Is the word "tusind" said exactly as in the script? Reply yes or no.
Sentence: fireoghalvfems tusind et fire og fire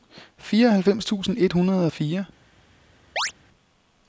yes